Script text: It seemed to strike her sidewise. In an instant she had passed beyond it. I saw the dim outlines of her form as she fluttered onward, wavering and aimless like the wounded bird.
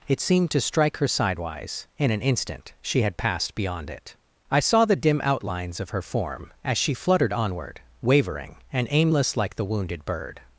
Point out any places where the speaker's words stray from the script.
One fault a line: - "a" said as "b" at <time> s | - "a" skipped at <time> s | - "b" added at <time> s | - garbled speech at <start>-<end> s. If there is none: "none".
none